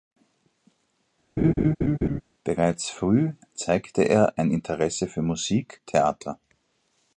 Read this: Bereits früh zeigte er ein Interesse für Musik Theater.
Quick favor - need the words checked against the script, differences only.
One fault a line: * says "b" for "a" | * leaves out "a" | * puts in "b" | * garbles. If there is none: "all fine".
all fine